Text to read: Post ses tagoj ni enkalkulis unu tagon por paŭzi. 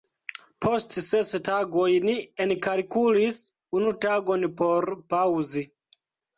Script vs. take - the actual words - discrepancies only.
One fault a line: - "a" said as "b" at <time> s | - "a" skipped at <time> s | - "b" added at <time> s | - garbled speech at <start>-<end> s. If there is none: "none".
none